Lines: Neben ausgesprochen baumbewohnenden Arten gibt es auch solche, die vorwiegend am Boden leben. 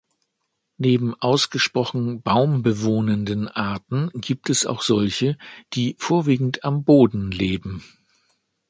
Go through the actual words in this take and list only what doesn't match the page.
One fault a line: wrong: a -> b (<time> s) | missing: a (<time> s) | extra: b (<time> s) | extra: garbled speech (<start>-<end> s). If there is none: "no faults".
no faults